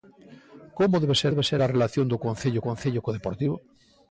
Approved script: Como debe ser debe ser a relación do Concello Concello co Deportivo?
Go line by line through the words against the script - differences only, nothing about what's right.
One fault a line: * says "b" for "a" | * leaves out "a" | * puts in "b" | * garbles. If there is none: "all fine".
all fine